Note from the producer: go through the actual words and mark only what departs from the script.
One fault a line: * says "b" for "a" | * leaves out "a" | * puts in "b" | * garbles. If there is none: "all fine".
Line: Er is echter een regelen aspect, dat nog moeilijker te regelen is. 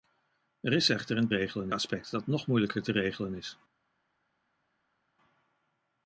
all fine